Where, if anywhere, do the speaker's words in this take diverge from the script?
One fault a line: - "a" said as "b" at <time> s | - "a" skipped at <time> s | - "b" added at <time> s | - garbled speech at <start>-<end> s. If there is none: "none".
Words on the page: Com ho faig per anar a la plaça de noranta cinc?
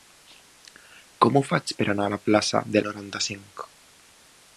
none